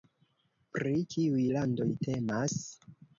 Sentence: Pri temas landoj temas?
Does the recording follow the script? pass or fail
fail